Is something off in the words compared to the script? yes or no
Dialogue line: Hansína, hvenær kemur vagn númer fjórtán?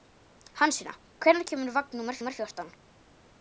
yes